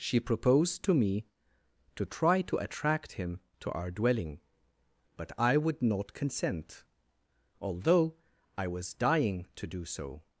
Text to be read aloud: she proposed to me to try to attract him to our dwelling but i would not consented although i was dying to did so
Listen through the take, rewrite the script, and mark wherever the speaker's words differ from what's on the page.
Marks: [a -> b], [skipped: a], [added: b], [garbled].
she proposed to me to try to attract him to our dwelling but i would not [consented -> consent] although i was dying to [did -> do] so